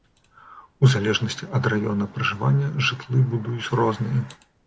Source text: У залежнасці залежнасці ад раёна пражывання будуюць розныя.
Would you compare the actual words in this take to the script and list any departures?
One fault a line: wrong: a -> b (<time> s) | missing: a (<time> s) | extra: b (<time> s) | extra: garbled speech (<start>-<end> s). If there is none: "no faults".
missing: залежнасці (1.5 s)
extra: жытлы (2.9 s)